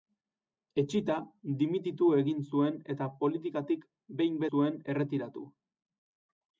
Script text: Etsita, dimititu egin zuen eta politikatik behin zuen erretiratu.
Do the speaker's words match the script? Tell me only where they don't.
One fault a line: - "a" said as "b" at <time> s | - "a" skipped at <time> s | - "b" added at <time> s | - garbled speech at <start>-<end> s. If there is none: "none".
none